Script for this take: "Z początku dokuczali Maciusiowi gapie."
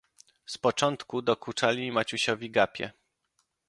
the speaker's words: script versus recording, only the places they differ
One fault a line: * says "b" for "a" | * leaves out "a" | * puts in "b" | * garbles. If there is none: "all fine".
all fine